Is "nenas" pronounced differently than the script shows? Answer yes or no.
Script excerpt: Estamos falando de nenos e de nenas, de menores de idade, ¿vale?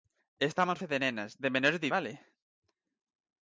no